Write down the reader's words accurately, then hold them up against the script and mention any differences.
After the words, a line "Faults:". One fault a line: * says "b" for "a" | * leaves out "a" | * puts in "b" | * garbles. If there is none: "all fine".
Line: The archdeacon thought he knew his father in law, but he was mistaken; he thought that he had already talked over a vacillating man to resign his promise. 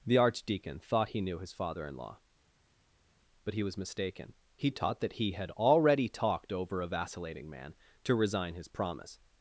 The archdeacon thought he knew his father in law, but he was mistaken; he taught that he had already talked over a vacillating man to resign his promise.
Faults:
* says "taught" for "thought"